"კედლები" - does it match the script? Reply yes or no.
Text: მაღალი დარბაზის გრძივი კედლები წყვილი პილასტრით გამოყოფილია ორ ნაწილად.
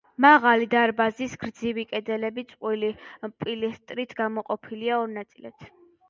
yes